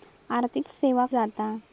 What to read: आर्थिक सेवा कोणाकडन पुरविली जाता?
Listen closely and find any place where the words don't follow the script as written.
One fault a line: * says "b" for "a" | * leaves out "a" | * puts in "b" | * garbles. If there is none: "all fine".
* leaves out "कोणाकडन पुरविली"